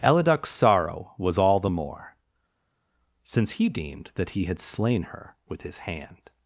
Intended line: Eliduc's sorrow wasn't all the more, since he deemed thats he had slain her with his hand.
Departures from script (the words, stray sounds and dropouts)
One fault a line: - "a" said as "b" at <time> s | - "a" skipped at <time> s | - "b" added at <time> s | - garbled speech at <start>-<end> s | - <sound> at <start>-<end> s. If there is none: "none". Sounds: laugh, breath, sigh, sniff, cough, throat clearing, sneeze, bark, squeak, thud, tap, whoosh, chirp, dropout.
- "wasn't" said as "was" at 1.2 s
- "thats" said as "that" at 4.1 s